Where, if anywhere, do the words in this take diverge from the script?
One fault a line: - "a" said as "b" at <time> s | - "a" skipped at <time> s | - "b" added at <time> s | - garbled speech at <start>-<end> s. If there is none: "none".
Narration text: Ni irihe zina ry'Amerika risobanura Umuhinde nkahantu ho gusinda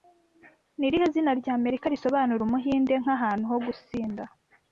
none